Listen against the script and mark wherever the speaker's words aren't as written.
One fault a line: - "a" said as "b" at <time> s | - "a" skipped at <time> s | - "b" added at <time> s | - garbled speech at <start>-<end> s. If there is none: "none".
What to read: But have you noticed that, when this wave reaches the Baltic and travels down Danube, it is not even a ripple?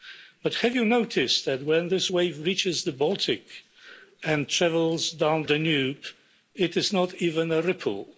none